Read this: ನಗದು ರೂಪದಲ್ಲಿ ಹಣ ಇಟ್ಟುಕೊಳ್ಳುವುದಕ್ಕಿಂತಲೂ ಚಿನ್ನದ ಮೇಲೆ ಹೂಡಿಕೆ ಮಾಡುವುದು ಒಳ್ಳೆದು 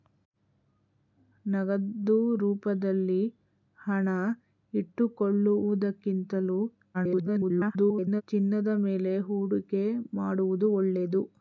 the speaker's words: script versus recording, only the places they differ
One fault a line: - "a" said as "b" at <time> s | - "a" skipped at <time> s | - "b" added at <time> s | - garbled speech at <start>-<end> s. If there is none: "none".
- garbled speech at 6.9-8.2 s